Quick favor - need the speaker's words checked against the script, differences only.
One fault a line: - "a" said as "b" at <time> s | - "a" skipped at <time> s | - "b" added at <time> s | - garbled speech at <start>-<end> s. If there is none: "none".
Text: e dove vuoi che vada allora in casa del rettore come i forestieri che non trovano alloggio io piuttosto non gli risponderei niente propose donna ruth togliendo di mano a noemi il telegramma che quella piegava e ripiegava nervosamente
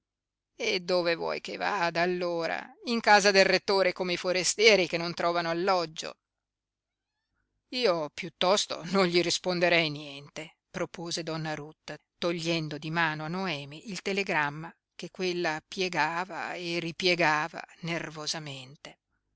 none